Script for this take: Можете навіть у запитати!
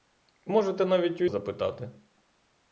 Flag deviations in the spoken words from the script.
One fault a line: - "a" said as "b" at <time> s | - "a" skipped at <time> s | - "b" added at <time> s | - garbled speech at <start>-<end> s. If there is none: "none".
none